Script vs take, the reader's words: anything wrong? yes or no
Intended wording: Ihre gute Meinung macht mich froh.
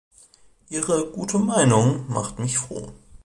no